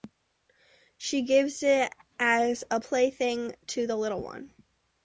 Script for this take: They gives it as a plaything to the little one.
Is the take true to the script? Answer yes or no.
no